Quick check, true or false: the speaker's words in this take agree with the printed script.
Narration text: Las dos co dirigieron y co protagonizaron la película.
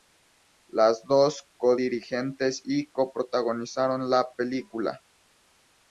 true